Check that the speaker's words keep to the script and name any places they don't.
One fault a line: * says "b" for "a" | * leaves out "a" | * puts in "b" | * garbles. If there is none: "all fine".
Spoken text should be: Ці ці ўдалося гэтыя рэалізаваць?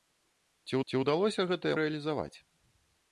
all fine